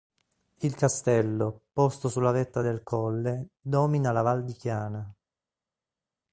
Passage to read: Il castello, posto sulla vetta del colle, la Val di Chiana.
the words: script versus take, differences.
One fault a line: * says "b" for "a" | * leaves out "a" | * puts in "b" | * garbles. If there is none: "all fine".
* puts in "domina"